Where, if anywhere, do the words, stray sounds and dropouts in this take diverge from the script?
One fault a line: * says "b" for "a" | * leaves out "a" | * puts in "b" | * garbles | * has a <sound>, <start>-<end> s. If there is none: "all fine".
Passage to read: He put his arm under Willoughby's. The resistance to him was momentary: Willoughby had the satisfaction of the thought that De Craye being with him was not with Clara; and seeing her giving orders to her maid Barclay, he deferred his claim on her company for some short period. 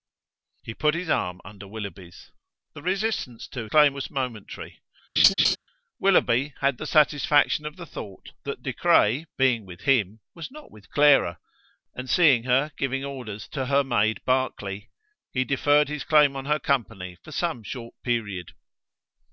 * says "claim" for "him"
* has a laugh, 5.2-5.6 s